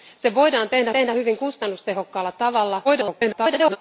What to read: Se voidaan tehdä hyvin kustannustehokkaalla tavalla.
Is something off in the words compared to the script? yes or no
yes